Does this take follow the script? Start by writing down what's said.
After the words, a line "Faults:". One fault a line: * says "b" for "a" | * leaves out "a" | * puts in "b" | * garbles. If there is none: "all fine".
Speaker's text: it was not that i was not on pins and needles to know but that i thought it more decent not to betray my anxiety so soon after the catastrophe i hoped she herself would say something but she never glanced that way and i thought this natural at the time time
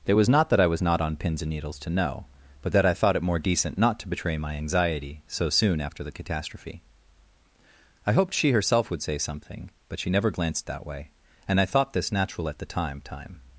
it was not that i was not on pins and needles to know but that i thought it more decent not to betray my anxiety so soon after the catastrophe i hoped she herself would say something but she never glanced that way and i thought this natural at the time time
Faults:
all fine